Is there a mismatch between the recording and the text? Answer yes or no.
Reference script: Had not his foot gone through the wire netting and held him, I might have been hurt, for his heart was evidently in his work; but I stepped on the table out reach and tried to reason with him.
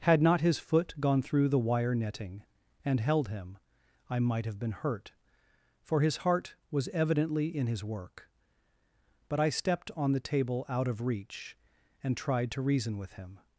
yes